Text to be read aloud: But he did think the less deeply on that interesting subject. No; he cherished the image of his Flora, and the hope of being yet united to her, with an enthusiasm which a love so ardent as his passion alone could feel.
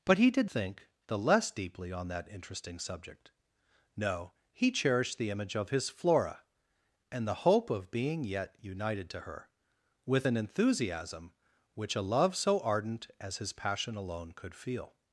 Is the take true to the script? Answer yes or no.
yes